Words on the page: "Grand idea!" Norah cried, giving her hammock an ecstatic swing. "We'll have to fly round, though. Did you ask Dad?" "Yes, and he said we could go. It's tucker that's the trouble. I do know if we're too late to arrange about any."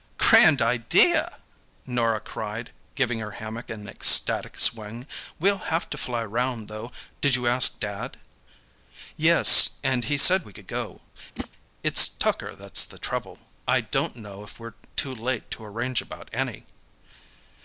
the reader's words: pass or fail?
fail